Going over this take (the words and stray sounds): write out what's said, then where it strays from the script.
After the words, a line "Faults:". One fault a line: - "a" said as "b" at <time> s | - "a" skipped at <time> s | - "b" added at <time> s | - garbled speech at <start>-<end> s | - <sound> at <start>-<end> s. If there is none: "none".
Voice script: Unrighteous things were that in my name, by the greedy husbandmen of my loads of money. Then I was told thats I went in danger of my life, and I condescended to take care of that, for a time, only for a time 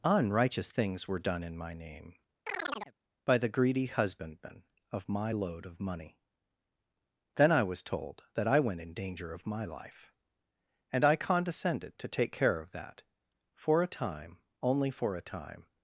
Unrighteous things were done in my name, by the greedy husbandmen of my load of money. Then I was told that I went in danger of my life, and I condescended to take care of that, for a time, only for a time
Faults:
- "that" said as "done" at 1.2 s
- chirp at 2.5-2.9 s
- "loads" said as "load" at 5.3 s
- "thats" said as "that" at 8.3 s